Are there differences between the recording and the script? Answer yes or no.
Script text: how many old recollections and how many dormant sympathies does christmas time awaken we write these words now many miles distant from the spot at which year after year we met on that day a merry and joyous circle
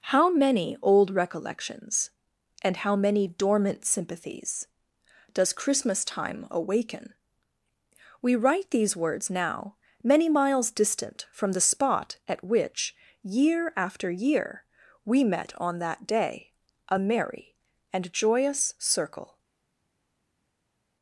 no